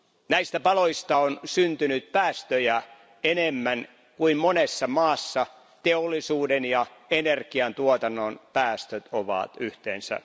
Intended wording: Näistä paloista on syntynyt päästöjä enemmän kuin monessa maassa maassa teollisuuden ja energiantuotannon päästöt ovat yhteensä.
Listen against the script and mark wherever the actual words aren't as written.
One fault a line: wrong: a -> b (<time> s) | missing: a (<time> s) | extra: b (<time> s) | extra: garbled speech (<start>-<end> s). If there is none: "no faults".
missing: maassa (5.5 s)